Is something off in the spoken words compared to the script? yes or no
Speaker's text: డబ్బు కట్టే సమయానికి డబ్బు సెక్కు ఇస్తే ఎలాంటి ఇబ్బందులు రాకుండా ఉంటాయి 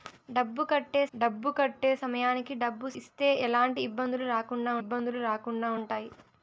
yes